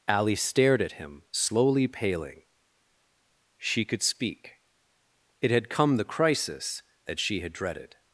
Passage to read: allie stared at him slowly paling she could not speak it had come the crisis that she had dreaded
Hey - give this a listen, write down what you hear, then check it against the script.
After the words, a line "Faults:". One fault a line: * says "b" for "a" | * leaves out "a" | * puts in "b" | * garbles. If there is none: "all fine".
allie stared at him slowly paling she could speak it had come the crisis that she had dreaded
Faults:
* leaves out "not"